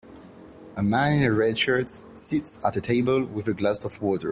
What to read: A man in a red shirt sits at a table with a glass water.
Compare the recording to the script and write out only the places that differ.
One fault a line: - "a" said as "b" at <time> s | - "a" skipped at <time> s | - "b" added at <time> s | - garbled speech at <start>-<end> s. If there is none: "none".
- "of" added at 3.8 s